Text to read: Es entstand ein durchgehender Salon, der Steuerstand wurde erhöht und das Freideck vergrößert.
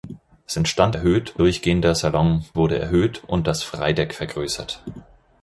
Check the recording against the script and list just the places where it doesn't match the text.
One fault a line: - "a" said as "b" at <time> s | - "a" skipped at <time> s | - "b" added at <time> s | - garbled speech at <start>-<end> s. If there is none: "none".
- "ein" said as "erhöht" at 0.9 s
- "der Steuerstand" skipped at 2.4 s